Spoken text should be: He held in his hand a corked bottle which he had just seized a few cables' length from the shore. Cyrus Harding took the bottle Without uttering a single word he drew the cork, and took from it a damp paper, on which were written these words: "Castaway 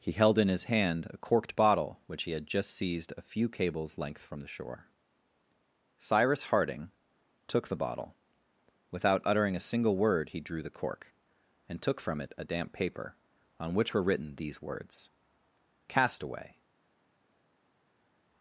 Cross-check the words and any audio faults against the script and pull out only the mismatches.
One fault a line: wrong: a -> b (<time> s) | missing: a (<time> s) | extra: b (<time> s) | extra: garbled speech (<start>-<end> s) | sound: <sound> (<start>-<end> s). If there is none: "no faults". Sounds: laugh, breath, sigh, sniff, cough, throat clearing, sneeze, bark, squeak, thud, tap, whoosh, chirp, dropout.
no faults